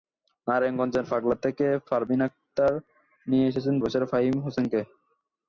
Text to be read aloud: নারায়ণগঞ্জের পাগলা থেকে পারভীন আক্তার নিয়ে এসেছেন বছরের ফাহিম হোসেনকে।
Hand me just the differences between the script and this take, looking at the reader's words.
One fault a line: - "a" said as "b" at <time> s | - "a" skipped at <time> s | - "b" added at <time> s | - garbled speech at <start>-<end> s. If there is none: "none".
none